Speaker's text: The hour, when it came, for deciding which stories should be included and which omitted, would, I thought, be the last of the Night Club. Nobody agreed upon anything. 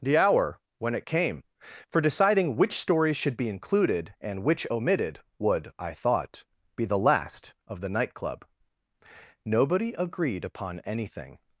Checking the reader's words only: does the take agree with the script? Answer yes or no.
yes